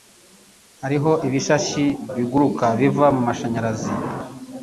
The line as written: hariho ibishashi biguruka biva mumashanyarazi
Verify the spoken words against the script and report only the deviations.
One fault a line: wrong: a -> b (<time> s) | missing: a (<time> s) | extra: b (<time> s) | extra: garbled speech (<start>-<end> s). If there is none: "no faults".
no faults